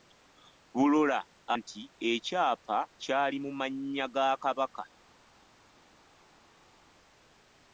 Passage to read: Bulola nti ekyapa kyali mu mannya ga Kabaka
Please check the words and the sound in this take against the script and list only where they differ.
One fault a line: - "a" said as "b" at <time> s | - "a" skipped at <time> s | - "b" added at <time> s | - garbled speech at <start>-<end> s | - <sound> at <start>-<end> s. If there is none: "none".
none